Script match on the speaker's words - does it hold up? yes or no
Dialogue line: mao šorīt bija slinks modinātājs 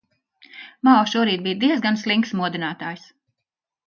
no